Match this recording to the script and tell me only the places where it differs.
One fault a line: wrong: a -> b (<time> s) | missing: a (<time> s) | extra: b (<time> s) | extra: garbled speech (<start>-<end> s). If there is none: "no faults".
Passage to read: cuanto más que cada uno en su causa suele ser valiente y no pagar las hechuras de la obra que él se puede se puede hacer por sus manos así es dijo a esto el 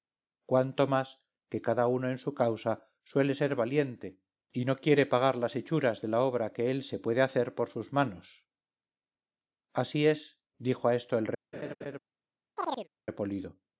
extra: quiere (4.8 s)
missing: se puede (7.2 s)